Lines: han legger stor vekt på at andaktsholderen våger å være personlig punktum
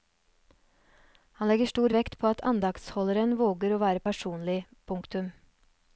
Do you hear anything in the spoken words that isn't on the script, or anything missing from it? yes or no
no